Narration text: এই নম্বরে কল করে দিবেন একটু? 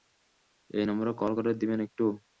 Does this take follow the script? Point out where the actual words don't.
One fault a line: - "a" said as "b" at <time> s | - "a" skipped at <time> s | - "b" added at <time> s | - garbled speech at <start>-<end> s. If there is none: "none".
none